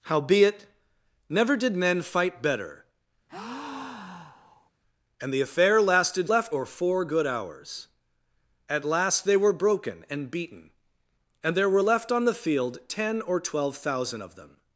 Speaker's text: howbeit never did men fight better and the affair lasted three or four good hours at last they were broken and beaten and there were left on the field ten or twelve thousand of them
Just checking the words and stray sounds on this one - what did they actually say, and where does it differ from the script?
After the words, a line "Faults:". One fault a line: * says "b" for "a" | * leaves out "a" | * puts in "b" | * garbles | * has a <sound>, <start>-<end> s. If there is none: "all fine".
howbeit never did men fight better and the affair lasted left or four good hours at last they were broken and beaten and there were left on the field ten or twelve thousand of them
Faults:
* has a breath, 3.3-4.7 s
* says "left" for "three"